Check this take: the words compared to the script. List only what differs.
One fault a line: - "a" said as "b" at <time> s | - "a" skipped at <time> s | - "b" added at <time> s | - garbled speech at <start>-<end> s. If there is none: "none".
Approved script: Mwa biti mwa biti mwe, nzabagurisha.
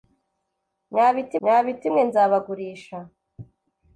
none